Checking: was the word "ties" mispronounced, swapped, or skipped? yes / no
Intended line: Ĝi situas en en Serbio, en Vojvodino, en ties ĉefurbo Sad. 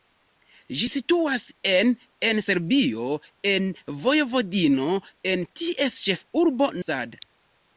no